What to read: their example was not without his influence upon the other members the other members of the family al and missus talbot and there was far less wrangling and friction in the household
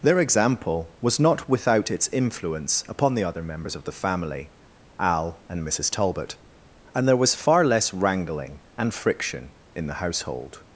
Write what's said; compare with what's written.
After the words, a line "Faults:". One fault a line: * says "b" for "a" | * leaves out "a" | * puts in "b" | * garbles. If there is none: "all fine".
their example was not without its influence upon the other members of the family al and missus talbot and there was far less wrangling and friction in the household
Faults:
* says "its" for "his"
* leaves out "the other members"